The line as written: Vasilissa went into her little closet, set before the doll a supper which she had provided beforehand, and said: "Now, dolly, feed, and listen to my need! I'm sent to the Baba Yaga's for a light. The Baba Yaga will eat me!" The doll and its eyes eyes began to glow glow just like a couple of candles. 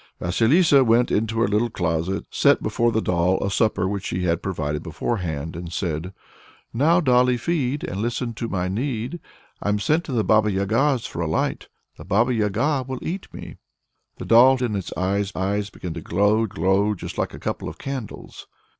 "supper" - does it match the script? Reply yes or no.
yes